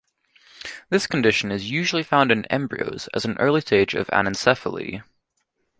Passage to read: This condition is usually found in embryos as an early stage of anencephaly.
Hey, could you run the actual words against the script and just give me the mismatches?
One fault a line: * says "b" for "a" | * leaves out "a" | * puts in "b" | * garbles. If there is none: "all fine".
all fine